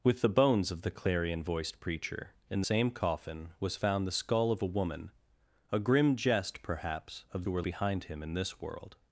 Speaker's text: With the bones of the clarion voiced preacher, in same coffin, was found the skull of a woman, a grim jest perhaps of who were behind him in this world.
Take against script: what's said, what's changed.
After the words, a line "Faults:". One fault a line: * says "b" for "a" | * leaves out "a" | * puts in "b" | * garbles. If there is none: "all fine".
With the bones of the clarion voiced preacher, in same coffin, was found the skull of a woman, a grim jest perhaps of who were behind him in this world.
Faults:
all fine